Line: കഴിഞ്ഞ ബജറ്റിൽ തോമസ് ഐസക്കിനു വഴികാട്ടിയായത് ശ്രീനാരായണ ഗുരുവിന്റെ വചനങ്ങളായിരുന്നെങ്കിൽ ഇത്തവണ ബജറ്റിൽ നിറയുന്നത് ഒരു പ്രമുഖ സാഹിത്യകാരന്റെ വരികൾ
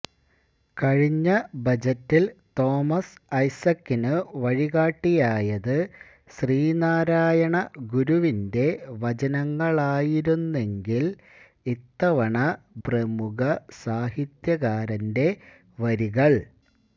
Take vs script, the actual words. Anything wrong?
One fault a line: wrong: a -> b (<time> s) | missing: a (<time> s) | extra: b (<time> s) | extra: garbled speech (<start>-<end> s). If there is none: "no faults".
missing: ബജറ്റിൽ നിറയുന്നത് ഒരു (12.4 s)